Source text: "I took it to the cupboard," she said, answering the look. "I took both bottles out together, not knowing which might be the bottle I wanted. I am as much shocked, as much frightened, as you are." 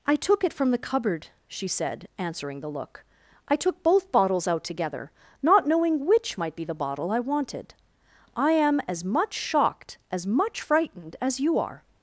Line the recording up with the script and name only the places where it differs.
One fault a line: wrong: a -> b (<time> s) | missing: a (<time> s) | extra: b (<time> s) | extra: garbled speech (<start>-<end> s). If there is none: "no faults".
wrong: to -> from (0.5 s)